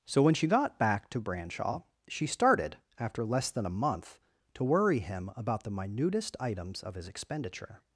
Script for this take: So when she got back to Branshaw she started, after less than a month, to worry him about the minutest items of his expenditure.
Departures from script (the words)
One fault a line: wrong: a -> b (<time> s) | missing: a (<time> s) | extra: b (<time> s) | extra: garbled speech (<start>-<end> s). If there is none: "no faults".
no faults